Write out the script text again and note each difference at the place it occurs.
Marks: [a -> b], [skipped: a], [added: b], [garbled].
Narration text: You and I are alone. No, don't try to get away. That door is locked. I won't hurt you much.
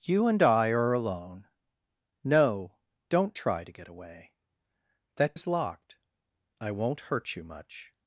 You and I are alone. No, don't try to get away. That [skipped: door] is locked. I won't hurt you much.